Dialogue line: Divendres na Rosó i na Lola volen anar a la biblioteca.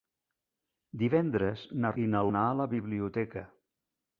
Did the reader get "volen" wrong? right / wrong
wrong